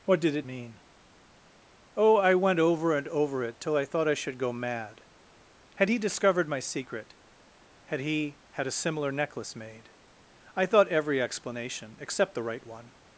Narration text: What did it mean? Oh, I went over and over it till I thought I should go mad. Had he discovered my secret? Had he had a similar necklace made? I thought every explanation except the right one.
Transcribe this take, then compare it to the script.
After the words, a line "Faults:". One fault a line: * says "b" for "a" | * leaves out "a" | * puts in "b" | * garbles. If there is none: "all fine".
What did it mean? Oh, I went over and over it till I thought I should go mad. Had he discovered my secret? Had he had a similar necklace made? I thought every explanation except the right one.
Faults:
all fine